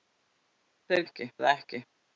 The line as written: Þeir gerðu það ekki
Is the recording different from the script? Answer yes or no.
yes